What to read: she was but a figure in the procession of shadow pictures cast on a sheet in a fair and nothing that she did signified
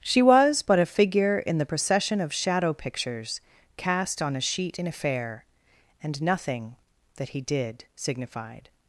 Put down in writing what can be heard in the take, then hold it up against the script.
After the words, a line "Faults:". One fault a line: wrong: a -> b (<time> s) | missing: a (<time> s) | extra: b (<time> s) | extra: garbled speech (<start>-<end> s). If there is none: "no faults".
she was but a figure in the procession of shadow pictures cast on a sheet in a fair and nothing that he did signified
Faults:
wrong: she -> he (7.3 s)